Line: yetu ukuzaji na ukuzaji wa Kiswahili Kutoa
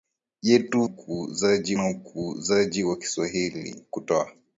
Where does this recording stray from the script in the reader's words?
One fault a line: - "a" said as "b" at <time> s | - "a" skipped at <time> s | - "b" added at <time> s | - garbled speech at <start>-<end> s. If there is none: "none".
none